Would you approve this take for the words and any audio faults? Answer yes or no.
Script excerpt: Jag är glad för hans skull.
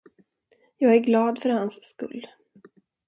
yes